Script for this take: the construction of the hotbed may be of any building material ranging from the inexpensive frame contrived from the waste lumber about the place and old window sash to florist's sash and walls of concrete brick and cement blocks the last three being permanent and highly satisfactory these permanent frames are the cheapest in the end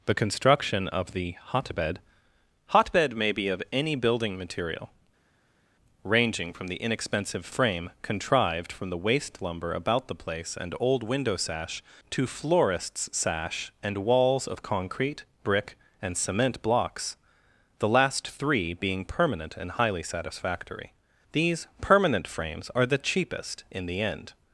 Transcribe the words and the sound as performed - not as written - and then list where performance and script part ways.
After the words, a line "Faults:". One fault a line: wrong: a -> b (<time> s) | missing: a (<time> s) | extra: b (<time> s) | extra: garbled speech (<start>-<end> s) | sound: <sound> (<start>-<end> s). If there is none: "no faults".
the construction of the hotbed hotbed may be of any building material ranging from the inexpensive frame contrived from the waste lumber about the place and old window sash to florist's sash and walls of concrete brick and cement blocks the last three being permanent and highly satisfactory these permanent frames are the cheapest in the end
Faults:
extra: hotbed (2.7 s)